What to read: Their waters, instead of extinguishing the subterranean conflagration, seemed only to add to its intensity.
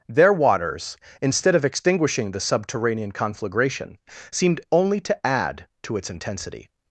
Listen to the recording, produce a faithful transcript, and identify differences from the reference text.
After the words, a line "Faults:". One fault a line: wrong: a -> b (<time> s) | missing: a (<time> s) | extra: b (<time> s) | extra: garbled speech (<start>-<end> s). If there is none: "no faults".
Their waters, instead of extinguishing the subterranean conflagration, seemed only to add to its intensity.
Faults:
no faults